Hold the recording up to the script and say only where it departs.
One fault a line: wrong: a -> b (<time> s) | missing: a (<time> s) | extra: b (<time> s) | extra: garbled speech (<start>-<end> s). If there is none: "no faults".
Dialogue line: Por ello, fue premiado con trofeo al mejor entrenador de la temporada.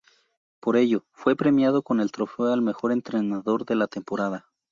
extra: el (2.0 s)